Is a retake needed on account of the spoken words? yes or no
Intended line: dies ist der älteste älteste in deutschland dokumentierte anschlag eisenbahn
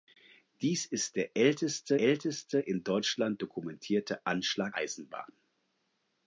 no